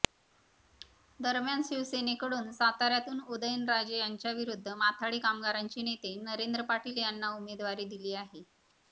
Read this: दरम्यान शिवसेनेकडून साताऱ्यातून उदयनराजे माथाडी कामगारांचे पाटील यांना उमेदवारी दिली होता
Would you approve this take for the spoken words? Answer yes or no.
no